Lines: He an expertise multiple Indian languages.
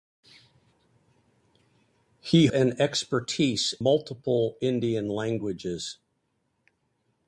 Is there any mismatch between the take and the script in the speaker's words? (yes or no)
no